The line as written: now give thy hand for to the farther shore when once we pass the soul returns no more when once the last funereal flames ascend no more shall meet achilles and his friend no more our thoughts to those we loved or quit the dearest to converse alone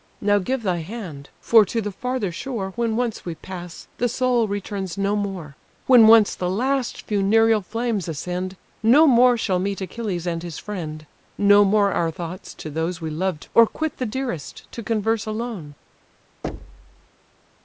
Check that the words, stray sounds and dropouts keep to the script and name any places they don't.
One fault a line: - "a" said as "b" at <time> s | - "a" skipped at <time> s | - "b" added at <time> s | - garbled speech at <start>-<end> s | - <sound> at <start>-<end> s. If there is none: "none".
- thud at 16.4-17.1 s